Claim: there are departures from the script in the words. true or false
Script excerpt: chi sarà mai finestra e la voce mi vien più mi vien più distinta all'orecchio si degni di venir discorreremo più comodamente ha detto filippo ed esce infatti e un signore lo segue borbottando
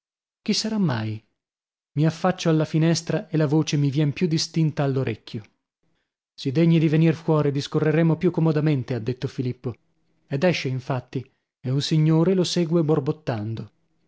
true